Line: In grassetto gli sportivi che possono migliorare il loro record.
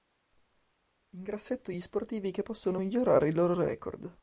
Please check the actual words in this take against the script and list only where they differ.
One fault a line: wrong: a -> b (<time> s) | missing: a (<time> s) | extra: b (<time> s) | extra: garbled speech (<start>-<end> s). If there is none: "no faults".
no faults